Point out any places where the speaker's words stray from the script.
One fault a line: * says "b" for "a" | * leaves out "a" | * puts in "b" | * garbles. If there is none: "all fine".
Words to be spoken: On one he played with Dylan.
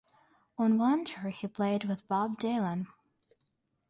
* puts in "tour"
* puts in "Bob"